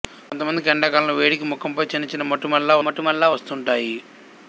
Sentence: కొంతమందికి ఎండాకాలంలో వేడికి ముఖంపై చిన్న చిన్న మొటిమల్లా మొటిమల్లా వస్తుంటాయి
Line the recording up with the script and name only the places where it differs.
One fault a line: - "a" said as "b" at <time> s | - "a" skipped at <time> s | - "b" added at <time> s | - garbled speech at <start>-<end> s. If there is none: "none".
none